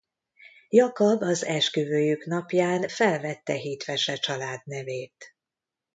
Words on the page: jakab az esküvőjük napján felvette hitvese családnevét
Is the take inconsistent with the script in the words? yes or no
no